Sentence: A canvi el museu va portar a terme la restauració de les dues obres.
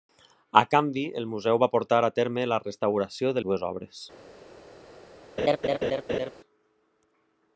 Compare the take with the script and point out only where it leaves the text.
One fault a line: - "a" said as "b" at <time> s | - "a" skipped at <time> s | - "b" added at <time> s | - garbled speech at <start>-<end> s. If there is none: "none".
- "les" skipped at 3.4 s